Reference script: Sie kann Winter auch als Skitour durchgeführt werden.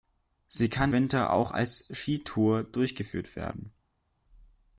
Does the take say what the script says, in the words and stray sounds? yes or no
yes